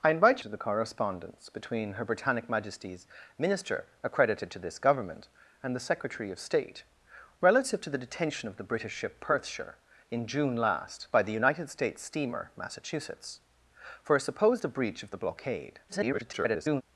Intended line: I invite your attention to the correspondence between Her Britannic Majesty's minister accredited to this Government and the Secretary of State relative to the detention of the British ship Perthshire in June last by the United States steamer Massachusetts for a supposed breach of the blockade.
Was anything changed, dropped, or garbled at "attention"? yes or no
yes